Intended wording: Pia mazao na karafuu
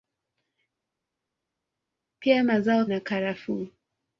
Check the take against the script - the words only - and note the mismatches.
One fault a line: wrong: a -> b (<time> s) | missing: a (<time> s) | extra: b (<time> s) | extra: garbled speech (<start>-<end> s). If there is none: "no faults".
no faults